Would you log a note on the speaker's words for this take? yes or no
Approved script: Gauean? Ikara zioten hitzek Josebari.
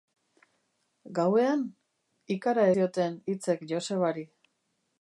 no